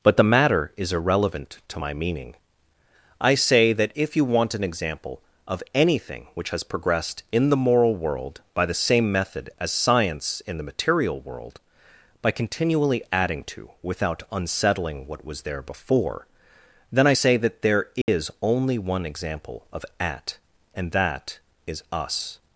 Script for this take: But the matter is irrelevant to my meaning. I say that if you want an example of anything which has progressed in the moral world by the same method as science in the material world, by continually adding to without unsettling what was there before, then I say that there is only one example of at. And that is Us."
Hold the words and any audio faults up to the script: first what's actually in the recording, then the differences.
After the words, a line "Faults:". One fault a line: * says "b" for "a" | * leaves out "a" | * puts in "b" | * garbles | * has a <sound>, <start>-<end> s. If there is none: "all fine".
But the matter is irrelevant to my meaning. I say that if you want an example of anything which has progressed in the moral world by the same method as science in the material world, by continually adding to without unsettling what was there before, then I say that there is only one example of at. And that is Us."
Faults:
* has a dropout, 18.0-18.1 s